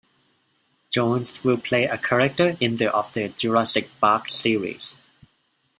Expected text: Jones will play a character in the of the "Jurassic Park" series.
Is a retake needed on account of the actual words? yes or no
no